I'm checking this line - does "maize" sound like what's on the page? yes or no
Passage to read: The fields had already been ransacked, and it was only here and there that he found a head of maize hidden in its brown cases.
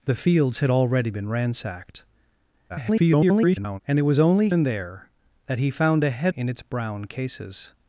no